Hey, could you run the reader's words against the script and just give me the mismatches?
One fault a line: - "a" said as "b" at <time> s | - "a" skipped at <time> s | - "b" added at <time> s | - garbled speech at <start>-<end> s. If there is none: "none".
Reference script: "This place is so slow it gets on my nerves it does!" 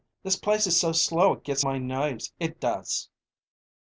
- "on" skipped at 1.6 s